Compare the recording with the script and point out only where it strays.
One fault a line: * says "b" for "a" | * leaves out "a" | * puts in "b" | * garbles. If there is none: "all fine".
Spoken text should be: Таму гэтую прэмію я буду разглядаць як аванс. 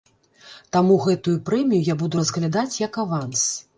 all fine